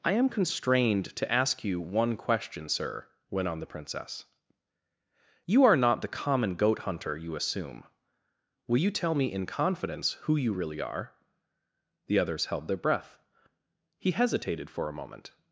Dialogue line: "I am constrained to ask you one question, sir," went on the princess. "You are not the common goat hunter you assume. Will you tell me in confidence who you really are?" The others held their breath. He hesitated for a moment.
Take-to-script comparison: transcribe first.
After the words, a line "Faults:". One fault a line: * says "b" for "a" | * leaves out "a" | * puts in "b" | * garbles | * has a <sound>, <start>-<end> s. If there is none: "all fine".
"I am constrained to ask you one question, sir," went on the princess. "You are not the common goat hunter you assume. Will you tell me in confidence who you really are?" The others held their breath. He hesitated for a moment.
Faults:
all fine